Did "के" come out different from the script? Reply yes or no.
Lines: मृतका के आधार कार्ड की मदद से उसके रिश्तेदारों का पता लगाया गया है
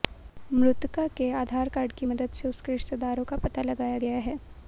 no